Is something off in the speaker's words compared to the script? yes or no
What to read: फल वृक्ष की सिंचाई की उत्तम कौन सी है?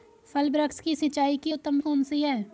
no